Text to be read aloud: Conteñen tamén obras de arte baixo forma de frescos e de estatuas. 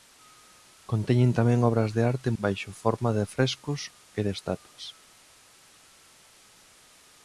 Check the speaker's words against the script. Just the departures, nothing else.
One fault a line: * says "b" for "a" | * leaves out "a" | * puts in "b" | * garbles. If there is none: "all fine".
all fine